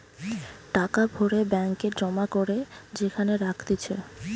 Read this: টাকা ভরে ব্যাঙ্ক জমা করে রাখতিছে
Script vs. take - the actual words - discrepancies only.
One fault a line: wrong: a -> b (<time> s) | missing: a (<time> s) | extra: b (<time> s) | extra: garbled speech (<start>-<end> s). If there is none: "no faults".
extra: এ (1.8 s)
extra: যেখানে (2.9 s)